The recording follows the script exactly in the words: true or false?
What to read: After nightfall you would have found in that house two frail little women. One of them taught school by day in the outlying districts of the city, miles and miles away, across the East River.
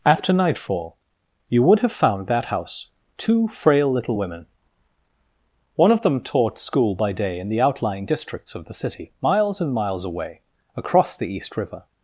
false